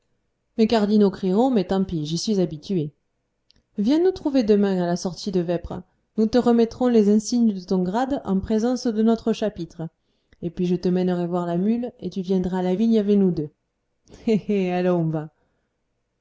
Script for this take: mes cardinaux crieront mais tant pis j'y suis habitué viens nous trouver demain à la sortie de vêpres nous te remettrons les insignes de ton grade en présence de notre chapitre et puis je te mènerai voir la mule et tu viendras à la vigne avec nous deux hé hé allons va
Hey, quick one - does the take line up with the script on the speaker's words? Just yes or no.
yes